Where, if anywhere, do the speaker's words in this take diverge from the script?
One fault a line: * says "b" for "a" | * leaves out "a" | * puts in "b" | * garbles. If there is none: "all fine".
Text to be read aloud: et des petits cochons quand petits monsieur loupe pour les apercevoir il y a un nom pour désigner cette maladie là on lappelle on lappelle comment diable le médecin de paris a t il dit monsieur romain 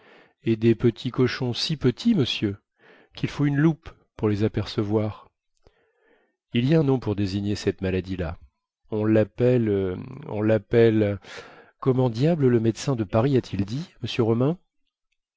* says "si" for "quand"
* puts in "quil faut une"